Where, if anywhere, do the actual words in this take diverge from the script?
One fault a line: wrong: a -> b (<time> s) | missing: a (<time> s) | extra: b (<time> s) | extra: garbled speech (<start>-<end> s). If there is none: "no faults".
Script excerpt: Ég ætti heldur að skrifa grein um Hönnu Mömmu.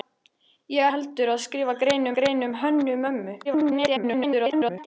missing: ætti (0.9 s)
extra: grein (2.2 s)
extra: garbled speech (3.4-4.9 s)